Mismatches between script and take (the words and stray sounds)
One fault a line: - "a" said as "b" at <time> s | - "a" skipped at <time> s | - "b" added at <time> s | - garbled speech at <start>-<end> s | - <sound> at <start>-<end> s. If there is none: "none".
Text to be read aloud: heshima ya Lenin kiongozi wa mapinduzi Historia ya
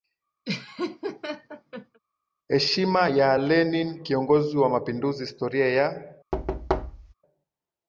- laugh at 0.4-2.0 s
- thud at 6.3-7.1 s